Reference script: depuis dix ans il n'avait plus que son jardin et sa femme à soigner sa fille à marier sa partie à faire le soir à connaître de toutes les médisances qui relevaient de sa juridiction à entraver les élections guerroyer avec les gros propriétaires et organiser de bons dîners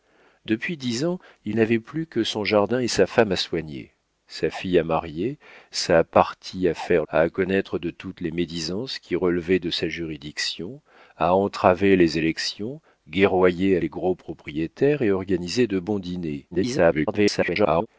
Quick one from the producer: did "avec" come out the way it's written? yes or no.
no